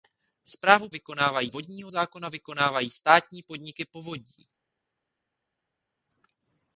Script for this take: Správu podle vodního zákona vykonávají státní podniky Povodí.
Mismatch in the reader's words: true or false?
true